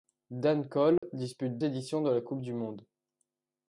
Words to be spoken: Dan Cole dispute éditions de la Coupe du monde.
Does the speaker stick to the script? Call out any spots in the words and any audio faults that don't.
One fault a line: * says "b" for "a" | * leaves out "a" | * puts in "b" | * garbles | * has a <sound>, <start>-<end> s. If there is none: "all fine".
* has a dropout, 1.0-1.0 s